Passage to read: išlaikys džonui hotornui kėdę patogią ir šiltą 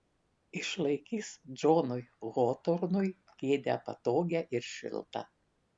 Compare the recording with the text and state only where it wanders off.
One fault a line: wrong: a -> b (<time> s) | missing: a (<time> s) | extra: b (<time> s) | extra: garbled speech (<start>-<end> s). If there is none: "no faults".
no faults